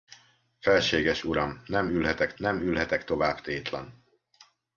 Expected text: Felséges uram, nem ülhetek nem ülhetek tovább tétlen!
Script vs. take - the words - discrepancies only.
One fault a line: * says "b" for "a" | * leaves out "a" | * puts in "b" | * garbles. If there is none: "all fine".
all fine